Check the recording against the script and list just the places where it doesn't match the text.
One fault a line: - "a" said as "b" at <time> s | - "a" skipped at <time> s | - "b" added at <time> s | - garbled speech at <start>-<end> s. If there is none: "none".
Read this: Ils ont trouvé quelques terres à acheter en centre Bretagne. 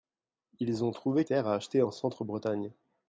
- "quelques" skipped at 1.2 s